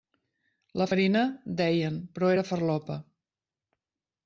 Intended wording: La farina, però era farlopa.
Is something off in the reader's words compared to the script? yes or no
yes